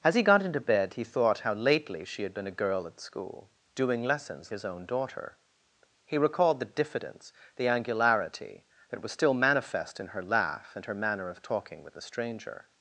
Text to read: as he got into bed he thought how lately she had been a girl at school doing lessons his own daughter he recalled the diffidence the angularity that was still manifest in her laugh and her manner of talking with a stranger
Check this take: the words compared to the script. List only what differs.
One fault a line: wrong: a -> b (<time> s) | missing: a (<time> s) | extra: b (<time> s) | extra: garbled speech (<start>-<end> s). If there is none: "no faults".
no faults